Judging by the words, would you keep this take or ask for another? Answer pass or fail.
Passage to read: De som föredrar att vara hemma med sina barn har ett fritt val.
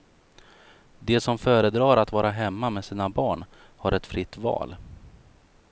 pass